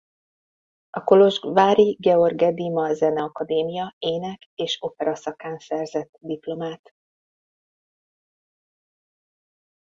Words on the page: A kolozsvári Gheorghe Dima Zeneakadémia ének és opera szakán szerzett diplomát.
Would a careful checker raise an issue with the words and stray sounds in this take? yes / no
no